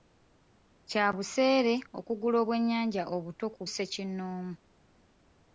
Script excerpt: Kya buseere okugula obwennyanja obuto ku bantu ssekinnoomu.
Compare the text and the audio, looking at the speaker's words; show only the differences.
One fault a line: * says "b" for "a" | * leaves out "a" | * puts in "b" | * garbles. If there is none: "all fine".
* leaves out "bantu"